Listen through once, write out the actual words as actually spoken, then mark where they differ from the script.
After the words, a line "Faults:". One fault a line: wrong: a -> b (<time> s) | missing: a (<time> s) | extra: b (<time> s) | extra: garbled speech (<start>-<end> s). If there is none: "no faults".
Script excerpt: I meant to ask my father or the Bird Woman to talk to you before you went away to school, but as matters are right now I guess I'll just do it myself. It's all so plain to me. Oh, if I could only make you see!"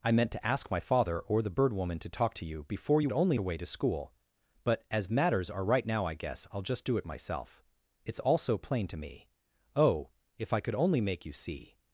I meant to ask my father or the Bird Woman to talk to you before you only away to school, but as matters are right now I guess I'll just do it myself. It's all so plain to me. Oh, if I could only make you see!"
Faults:
wrong: went -> only (3.1 s)